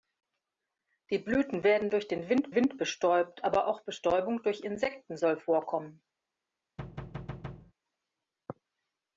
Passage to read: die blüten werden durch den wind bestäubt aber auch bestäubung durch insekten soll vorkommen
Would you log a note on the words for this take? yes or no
yes